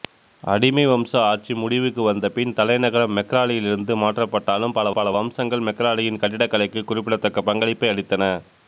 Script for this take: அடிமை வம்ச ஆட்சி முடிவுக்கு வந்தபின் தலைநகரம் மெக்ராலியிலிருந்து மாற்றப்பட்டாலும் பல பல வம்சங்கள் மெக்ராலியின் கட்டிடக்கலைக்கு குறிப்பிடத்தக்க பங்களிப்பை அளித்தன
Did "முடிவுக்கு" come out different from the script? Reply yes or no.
no